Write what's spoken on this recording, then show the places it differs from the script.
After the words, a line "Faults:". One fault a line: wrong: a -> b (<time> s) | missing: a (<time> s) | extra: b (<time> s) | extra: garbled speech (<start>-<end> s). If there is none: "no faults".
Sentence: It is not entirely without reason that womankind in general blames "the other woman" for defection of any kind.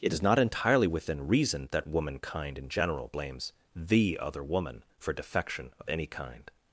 It is not entirely within reason that womankind in general blames "the other woman" for defection of any kind.
Faults:
wrong: without -> within (0.9 s)